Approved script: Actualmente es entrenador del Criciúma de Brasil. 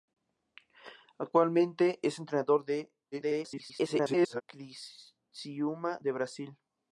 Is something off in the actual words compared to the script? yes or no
yes